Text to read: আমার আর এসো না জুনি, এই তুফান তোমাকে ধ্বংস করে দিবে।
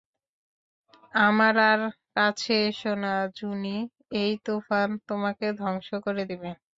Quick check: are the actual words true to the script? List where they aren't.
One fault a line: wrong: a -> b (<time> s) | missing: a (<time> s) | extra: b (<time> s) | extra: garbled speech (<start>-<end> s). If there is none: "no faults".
extra: কাছে (2.2 s)